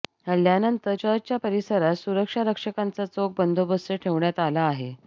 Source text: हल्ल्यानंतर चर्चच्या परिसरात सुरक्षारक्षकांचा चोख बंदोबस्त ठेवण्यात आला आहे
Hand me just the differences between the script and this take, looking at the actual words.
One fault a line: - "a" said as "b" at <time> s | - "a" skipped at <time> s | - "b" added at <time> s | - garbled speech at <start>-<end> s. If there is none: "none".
none